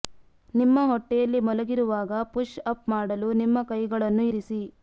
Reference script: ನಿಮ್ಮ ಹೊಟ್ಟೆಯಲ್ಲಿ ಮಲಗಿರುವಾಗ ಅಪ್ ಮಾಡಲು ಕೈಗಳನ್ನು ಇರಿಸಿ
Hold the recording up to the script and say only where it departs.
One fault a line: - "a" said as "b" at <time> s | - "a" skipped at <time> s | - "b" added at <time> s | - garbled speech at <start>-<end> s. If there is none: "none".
- "ಪುಶ್" added at 2.3 s
- "ನಿಮ್ಮ" added at 3.4 s